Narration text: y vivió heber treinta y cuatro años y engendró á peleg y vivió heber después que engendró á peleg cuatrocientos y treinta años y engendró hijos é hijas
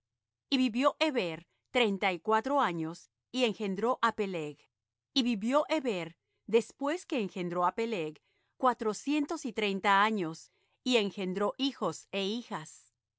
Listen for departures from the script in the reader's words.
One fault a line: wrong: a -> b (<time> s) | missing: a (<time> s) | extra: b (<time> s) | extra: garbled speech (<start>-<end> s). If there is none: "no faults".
no faults